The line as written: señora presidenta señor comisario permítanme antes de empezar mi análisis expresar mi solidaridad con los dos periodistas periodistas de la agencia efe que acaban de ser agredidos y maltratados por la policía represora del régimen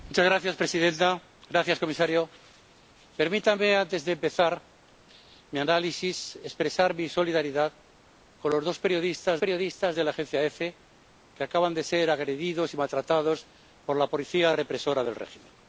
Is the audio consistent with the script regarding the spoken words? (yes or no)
yes